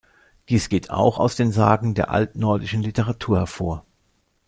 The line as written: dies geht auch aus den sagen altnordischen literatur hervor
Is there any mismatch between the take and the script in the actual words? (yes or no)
yes